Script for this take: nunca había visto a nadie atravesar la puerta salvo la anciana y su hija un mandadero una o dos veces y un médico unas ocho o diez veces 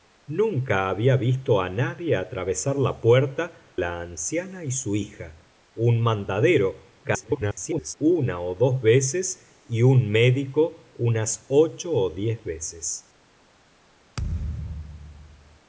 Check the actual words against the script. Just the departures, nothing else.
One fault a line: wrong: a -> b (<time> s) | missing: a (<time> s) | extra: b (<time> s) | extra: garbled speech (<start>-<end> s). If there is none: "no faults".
missing: salvo (3.8 s)
extra: garbled speech (7.0-7.9 s)